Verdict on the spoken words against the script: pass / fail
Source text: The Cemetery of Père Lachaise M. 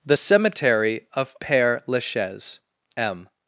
pass